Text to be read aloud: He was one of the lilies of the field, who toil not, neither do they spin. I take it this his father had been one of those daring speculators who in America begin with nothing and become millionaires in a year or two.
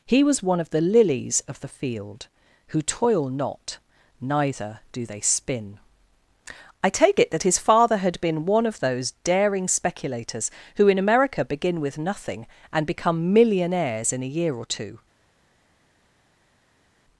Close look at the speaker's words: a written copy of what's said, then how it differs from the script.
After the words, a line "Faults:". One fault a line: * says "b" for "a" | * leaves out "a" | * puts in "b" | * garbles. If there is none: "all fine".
He was one of the lilies of the field, who toil not, neither do they spin. I take it that his father had been one of those daring speculators who in America begin with nothing and become millionaires in a year or two.
Faults:
* says "that" for "this"